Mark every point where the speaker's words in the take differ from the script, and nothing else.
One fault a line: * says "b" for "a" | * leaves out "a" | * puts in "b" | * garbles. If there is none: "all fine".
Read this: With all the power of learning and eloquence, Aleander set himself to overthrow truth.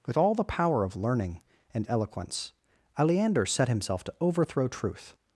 all fine